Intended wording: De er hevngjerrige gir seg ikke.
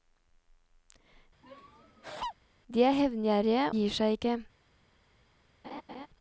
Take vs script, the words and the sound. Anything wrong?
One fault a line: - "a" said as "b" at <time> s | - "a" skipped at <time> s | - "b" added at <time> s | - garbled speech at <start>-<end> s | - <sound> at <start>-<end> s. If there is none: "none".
- laugh at 1.4-2.3 s
- laugh at 5.6-6.1 s